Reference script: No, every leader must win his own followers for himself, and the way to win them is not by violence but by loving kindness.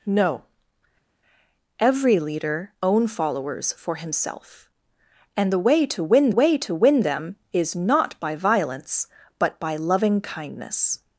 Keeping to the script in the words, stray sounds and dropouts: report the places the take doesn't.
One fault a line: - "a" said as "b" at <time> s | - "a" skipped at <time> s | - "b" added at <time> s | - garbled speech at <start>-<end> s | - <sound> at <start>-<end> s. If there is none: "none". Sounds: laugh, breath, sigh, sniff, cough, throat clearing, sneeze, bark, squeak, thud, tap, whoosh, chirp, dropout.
- "must win his" skipped at 2.7 s
- "way to win" added at 6.3 s